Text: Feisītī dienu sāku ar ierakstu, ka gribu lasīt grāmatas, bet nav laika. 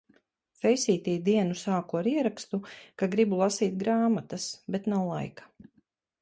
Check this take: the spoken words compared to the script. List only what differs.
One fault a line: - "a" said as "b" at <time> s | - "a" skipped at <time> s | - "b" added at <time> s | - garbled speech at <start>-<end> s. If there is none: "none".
none